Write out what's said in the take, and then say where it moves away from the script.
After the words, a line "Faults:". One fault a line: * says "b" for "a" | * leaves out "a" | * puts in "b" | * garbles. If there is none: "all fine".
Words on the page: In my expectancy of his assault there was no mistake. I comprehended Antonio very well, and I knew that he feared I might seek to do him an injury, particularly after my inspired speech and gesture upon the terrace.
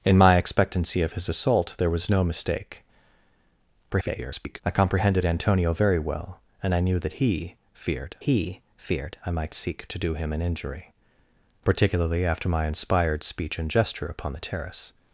In my expectancy of his assault there was no mistake. [garbled] I comprehended Antonio very well, and I knew that he feared he feared I might seek to do him an injury, particularly after my inspired speech and gesture upon the terrace.
Faults:
* garbles
* puts in "he feared"